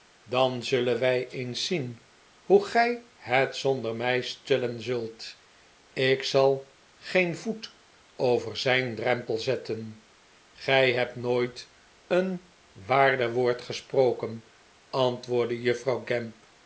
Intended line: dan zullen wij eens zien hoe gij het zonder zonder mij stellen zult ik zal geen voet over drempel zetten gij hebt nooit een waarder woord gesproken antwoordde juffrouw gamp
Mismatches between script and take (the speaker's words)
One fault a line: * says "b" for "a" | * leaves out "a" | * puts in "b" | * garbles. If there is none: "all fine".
* leaves out "zonder"
* puts in "zijn"